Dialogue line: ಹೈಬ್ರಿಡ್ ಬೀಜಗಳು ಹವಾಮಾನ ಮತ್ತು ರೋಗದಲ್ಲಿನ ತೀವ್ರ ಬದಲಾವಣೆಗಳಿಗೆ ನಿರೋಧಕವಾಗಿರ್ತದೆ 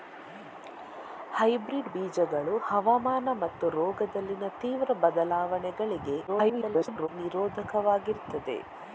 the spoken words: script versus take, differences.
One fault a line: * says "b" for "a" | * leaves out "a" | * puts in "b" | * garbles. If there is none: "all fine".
* garbles